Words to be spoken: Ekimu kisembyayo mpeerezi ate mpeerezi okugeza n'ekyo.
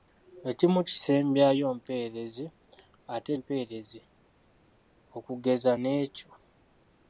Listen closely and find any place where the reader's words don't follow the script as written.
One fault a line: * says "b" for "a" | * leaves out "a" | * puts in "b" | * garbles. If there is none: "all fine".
all fine